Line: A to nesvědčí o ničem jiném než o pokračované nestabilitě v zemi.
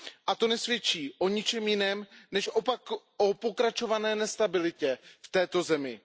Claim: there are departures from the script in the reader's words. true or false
true